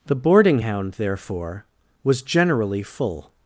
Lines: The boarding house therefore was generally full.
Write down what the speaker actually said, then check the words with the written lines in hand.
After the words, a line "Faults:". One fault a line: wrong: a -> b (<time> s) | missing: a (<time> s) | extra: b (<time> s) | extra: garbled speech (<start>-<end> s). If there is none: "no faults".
The boarding hound therefore was generally full.
Faults:
wrong: house -> hound (0.6 s)